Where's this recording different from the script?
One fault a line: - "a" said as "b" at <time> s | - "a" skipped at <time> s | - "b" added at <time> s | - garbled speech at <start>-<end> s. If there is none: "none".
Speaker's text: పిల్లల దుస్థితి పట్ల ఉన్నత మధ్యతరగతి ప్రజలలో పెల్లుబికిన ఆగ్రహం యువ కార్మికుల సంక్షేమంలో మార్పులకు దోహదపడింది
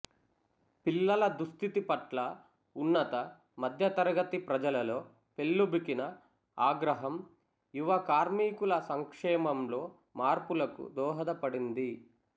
none